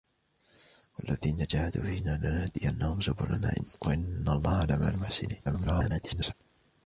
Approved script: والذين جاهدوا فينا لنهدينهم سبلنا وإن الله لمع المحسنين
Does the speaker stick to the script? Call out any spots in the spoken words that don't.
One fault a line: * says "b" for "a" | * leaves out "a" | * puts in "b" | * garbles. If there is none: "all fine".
* garbles